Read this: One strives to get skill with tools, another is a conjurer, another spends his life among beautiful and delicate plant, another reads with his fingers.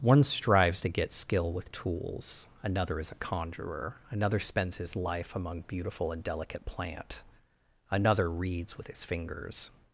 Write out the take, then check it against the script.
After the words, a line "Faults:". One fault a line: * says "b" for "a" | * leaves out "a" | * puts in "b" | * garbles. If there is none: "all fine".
One strives to get skill with tools, another is a conjurer, another spends his life among beautiful and delicate plant, another reads with his fingers.
Faults:
all fine